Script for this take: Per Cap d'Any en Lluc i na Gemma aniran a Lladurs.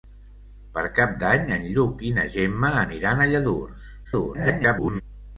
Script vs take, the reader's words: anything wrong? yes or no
yes